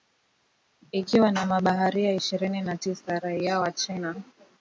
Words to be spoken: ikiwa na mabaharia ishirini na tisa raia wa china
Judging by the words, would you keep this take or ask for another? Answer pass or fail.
pass